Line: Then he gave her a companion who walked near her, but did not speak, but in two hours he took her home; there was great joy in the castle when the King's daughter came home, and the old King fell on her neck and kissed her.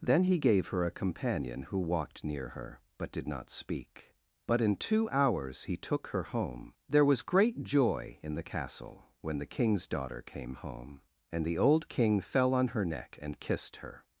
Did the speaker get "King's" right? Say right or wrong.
right